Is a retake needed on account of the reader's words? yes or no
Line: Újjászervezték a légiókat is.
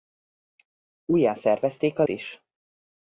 yes